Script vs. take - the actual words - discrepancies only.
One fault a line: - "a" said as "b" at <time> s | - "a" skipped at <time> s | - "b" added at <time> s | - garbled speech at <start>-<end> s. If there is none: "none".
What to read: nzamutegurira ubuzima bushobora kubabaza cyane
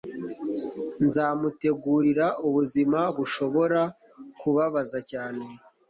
none